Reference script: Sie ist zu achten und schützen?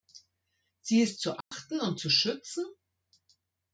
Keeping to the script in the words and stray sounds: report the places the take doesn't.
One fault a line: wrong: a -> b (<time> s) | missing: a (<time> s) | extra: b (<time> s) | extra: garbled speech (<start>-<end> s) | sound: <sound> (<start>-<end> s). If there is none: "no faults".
sound: dropout (1.4-1.5 s)
extra: zu (2.0 s)